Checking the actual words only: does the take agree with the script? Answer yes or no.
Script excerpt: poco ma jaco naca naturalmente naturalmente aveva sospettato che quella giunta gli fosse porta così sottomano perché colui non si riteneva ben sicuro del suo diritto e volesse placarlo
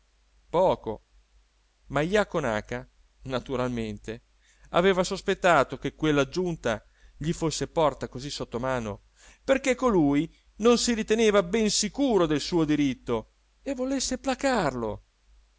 no